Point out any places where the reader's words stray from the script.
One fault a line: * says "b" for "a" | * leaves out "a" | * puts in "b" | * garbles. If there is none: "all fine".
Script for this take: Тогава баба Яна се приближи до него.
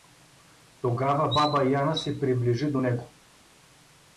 all fine